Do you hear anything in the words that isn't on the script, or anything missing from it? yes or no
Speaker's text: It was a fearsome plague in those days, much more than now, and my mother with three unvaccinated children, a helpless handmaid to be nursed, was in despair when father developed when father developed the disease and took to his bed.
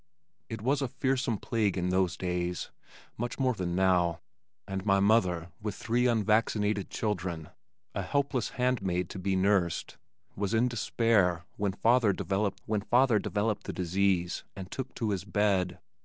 no